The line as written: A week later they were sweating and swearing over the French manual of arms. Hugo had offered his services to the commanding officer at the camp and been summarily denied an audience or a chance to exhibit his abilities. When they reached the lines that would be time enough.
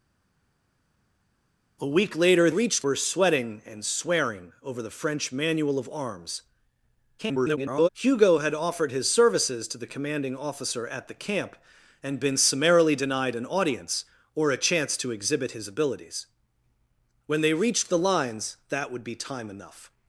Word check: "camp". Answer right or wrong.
right